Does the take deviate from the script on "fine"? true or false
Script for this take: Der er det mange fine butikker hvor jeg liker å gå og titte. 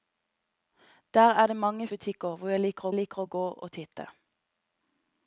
true